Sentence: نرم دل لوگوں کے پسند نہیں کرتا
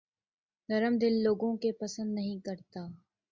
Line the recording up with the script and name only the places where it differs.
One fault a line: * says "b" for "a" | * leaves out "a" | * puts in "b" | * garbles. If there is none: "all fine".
all fine